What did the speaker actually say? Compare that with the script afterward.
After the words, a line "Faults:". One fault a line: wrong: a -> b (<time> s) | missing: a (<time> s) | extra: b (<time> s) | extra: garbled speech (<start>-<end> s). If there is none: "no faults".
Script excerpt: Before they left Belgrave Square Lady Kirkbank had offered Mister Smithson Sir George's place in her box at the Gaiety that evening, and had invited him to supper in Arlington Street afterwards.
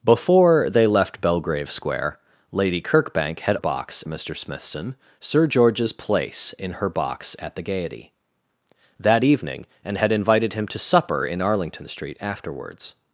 Before they left Belgrave Square Lady Kirkbank had box Mister Smithson Sir George's place in her box at the Gaiety that evening, and had invited him to supper in Arlington Street afterwards.
Faults:
wrong: offered -> box (3.6 s)